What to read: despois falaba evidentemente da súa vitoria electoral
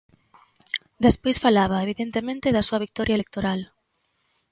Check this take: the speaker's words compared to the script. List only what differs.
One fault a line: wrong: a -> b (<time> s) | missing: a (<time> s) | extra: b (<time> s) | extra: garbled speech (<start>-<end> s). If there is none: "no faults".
no faults